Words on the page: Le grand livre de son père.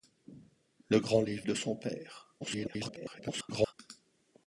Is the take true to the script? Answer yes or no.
no